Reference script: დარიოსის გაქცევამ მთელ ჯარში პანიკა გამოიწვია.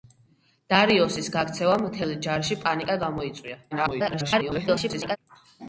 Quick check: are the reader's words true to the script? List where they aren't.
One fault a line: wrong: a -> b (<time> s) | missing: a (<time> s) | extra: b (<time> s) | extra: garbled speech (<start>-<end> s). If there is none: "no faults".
extra: garbled speech (3.7-5.2 s)